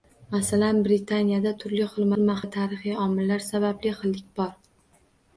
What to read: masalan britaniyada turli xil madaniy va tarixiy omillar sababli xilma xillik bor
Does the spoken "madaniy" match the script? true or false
false